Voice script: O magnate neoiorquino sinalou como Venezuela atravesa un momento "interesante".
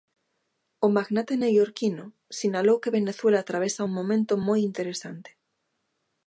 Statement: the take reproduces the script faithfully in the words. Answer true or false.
false